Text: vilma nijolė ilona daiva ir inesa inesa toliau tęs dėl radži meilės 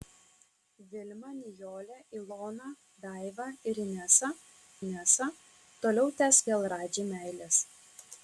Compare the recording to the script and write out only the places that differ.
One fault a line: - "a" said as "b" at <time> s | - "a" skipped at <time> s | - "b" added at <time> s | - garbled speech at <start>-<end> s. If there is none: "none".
none